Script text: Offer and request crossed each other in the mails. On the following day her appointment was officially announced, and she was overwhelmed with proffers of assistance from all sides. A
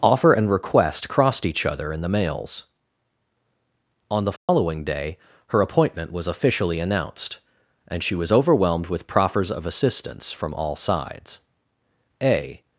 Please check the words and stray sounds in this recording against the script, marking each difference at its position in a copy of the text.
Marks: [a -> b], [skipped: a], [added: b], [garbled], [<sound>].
Offer and request crossed each other in the mails. On the following [dropout] day her appointment was officially announced, and she was overwhelmed with proffers of assistance from all sides. A